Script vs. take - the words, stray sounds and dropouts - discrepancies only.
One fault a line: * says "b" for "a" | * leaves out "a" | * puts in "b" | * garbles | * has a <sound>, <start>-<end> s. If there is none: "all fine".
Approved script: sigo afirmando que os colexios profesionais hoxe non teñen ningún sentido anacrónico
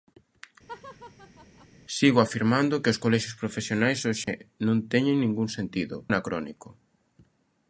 * has a laugh, 0.7-1.7 s
* has a dropout, 4.2-4.3 s